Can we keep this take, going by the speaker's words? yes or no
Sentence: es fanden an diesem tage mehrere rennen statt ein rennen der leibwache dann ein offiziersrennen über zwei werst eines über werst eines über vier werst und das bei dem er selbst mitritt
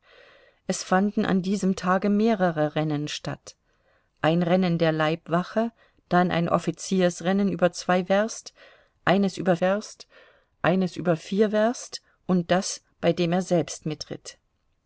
yes